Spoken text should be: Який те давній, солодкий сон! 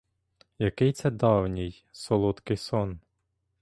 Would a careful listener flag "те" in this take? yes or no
yes